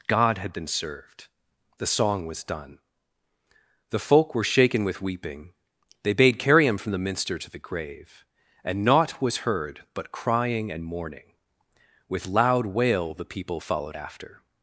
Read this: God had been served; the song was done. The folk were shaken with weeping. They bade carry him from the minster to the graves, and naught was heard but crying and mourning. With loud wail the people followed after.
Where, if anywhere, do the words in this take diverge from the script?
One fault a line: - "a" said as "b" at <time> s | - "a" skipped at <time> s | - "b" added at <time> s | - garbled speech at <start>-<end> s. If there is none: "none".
- "graves" said as "grave" at 7.6 s